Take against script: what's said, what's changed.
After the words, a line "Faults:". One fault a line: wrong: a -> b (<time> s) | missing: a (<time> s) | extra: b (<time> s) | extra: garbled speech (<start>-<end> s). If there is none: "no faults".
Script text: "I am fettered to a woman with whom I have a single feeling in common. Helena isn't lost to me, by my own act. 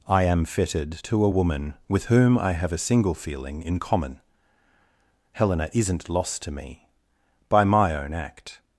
"I am fettered to a woman with whom I have a single feeling in common. Helena isn't lost to me, by my own act.
Faults:
no faults